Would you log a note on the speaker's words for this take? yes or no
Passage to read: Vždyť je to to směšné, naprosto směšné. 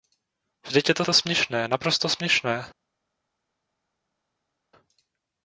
no